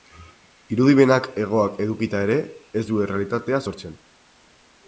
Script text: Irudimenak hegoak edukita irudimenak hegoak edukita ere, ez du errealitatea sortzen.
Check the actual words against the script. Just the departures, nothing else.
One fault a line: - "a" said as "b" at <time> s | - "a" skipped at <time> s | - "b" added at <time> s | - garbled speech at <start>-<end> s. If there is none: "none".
- "irudimenak hegoak edukita" skipped at 2.2 s